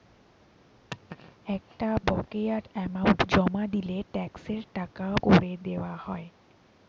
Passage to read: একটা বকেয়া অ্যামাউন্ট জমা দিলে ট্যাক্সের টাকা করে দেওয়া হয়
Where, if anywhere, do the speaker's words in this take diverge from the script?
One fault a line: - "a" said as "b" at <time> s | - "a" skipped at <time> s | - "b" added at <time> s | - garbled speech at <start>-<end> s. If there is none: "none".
none